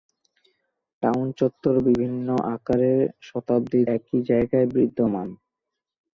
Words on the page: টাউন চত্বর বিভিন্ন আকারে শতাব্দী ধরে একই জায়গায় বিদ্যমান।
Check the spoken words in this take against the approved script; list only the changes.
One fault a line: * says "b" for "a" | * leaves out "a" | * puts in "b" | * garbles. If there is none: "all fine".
* leaves out "ধরে"